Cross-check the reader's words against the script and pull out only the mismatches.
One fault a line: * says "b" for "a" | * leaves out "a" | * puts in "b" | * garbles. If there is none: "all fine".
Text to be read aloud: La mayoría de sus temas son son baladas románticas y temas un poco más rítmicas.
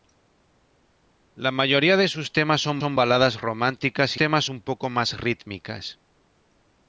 all fine